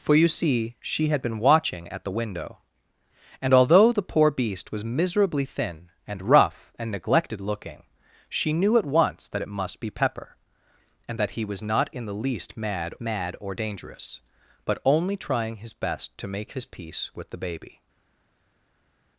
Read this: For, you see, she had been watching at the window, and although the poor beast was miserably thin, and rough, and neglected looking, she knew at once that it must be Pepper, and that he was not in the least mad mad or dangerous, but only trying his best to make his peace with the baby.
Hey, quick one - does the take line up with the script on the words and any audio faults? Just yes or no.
yes